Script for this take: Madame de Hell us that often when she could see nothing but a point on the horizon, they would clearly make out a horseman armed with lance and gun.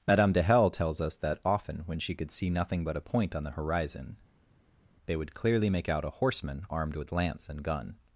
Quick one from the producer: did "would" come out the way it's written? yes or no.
yes